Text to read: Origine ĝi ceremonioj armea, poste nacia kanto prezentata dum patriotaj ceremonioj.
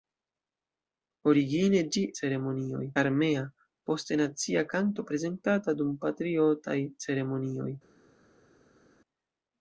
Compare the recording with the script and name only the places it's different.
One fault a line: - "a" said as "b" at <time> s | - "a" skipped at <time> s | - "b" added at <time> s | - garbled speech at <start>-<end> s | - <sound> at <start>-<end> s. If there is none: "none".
none